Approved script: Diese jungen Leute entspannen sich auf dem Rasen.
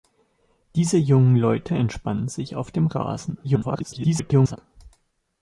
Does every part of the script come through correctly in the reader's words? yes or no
no